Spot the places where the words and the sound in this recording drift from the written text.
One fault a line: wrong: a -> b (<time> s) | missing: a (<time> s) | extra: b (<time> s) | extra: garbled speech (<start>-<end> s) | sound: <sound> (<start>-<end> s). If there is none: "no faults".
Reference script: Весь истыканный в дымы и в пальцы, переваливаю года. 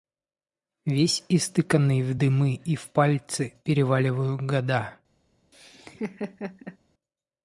sound: laugh (5.5-6.8 s)